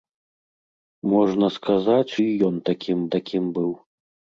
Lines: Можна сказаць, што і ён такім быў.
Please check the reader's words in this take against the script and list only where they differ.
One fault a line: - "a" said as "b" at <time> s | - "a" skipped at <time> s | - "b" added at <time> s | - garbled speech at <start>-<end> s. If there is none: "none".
- "што" skipped at 2.1 s
- "такім" added at 3.2 s